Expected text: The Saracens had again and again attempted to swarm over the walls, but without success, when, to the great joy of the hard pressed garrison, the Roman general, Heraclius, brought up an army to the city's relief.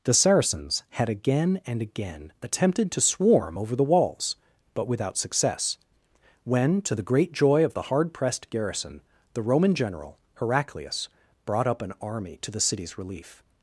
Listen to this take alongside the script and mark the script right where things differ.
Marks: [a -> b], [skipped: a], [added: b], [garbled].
The Saracens had again and again attempted to swarm over the walls, but without success, when, to the great joy of the hard pressed garrison, the Roman general, Heraclius, brought up an army to the city's relief.